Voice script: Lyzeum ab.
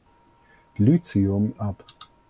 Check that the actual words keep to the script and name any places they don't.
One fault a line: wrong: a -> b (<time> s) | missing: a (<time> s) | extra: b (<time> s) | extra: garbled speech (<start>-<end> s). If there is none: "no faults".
no faults